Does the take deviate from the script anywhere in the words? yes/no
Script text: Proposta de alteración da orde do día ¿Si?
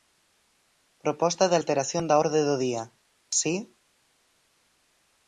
no